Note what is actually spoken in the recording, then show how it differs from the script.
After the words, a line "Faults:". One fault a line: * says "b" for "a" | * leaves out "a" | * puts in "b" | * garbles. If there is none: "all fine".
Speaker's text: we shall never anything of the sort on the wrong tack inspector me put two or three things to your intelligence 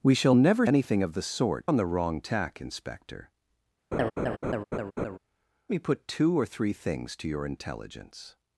we shall never anything of the sort on the wrong tack inspector me put two or three things to your intelligence
Faults:
all fine